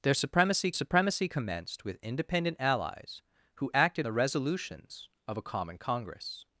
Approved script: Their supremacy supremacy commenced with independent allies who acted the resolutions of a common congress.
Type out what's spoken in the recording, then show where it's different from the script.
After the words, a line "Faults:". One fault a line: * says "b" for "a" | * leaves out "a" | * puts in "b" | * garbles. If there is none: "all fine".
Their supremacy supremacy commenced with independent allies who acted the resolutions of a common congress.
Faults:
all fine